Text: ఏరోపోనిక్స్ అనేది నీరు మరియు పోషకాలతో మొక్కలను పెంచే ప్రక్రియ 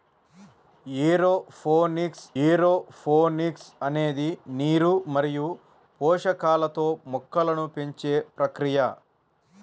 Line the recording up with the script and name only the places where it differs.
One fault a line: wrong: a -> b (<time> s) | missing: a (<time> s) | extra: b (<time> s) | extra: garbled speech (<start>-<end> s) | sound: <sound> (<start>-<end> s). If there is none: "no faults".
extra: ఏరోపోనిక్స్ (2.4 s)